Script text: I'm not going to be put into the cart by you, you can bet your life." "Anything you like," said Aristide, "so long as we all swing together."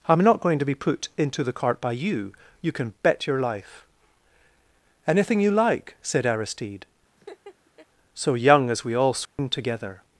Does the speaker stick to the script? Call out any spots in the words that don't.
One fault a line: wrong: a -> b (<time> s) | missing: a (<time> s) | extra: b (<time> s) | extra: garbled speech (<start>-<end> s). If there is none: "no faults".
wrong: long -> young (8.3 s)